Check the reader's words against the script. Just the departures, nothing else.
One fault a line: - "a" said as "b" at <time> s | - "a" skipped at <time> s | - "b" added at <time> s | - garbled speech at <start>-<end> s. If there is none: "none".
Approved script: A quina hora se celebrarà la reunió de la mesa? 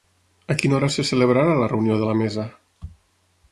none